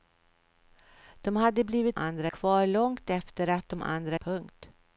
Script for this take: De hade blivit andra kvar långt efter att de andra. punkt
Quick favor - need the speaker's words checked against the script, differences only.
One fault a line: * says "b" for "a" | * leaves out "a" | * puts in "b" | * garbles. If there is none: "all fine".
all fine